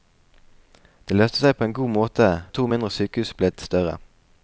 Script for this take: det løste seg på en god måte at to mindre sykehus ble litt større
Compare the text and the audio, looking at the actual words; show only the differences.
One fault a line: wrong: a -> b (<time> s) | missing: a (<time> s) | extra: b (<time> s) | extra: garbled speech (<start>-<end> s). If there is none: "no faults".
no faults